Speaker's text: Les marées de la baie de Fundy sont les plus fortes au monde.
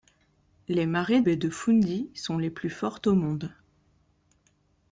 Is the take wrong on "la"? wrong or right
wrong